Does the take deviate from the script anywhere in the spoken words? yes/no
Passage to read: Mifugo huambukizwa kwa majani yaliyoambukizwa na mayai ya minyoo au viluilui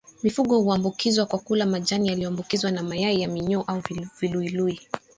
yes